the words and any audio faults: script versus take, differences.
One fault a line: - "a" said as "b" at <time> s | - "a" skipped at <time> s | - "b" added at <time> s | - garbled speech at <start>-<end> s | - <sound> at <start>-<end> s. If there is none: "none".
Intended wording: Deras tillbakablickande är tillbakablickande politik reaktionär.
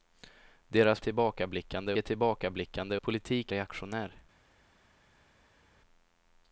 none